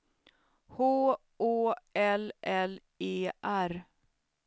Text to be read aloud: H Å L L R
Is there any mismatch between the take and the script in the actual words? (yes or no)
yes